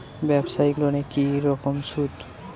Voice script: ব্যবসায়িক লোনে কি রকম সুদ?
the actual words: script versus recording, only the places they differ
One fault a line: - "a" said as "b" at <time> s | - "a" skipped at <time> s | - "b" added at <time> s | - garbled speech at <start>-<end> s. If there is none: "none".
none